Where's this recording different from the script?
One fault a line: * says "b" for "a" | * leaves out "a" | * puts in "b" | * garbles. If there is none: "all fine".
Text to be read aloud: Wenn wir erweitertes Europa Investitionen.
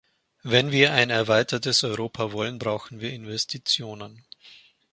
* puts in "ein"
* puts in "wollen brauchen wir"